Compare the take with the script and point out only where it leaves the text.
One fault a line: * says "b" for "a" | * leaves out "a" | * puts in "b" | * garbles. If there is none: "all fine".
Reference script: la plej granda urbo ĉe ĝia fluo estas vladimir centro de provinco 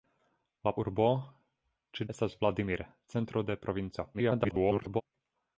* leaves out "plej granda"
* leaves out "ĝia fluo"
* garbles